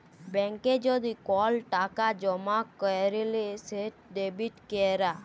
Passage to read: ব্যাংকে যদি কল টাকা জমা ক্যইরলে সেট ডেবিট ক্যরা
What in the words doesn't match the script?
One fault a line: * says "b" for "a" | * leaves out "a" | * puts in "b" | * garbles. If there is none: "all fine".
all fine